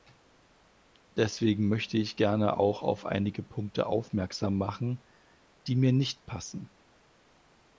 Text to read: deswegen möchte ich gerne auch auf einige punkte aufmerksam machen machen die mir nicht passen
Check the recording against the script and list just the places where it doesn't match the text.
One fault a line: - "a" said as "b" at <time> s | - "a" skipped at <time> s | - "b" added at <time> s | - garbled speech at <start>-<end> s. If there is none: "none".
- "machen" skipped at 5.0 s